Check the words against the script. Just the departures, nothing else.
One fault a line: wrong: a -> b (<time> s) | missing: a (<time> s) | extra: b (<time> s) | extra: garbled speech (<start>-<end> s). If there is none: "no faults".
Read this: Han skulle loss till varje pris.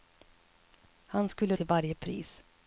missing: loss (1.6 s)